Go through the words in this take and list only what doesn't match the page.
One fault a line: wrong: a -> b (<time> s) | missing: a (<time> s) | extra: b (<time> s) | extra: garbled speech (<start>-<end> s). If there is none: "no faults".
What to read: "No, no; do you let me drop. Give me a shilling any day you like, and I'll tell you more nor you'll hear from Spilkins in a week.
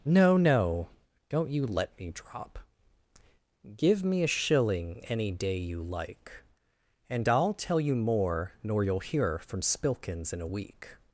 wrong: do -> don't (1.3 s)